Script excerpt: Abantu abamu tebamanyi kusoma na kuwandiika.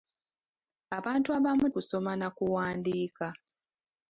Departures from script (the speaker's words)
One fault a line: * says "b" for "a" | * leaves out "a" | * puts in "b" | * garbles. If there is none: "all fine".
* leaves out "tebamanyi"